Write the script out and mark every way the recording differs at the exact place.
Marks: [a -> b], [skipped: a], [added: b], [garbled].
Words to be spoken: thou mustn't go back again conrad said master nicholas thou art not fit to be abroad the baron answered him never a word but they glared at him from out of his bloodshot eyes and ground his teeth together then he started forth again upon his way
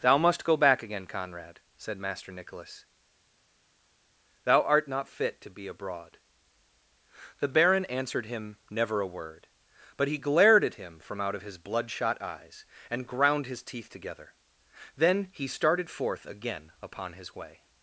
thou [mustn't -> must] go back again conrad said master nicholas thou art not fit to be abroad the baron answered him never a word but [they -> he] glared at him from out of his bloodshot eyes and ground his teeth together then he started forth again upon his way